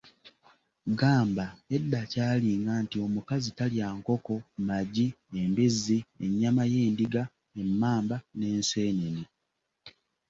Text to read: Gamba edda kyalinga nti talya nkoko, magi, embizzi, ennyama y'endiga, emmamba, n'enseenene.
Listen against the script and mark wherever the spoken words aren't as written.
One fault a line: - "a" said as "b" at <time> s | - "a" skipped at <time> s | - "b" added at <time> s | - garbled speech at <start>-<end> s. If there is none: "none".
- "omukazi" added at 3.0 s